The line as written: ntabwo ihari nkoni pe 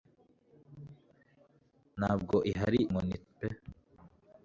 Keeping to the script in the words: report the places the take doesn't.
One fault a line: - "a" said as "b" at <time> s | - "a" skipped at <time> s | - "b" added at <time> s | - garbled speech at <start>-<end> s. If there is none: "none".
none